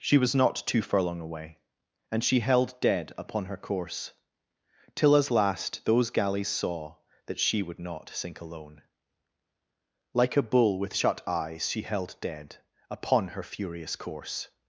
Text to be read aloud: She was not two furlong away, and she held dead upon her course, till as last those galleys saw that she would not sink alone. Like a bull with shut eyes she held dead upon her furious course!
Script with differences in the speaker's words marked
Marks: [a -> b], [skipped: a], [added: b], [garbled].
She was not two furlong away, and she held dead upon her course, till as last those galleys saw that she would not sink alone. Like a bull with shut eyes she held dead upon her furious course!